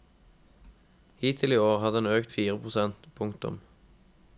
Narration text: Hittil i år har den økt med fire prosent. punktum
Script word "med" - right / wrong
wrong